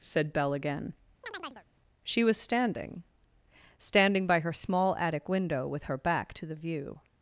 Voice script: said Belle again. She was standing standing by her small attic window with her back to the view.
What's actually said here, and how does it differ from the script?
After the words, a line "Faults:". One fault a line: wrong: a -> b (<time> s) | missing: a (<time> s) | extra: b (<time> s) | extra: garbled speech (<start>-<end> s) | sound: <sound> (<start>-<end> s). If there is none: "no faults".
said Belle again. She was standing standing by her small attic window with her back to the view.
Faults:
sound: chirp (1.2-1.7 s)